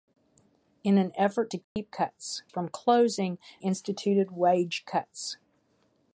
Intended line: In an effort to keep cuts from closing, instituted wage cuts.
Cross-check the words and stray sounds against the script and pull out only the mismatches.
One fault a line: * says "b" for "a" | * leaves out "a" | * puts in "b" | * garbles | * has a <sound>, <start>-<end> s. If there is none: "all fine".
* has a dropout, 1.6-1.8 s